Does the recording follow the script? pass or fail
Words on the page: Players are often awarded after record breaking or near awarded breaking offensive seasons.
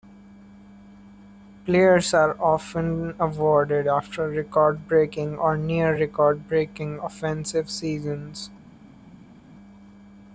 fail